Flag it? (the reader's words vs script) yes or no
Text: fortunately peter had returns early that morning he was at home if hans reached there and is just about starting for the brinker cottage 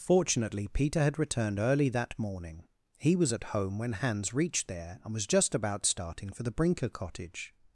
yes